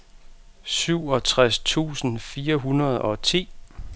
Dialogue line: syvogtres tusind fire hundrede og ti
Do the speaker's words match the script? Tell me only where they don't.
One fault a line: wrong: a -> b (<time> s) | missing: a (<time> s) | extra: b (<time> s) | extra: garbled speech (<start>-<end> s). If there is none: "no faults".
no faults